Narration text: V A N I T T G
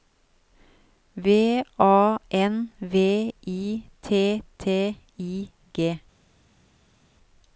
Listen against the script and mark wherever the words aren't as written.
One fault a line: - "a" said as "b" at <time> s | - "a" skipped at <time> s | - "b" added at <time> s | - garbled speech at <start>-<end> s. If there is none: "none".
- "V" added at 2.8 s
- "I" added at 5.2 s